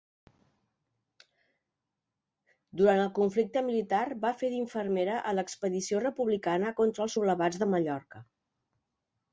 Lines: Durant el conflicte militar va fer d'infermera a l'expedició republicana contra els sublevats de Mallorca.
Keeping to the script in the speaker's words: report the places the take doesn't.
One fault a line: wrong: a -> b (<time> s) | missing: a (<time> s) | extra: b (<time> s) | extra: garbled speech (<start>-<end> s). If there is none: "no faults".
no faults